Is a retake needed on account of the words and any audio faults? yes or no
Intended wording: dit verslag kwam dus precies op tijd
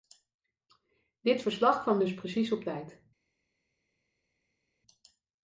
no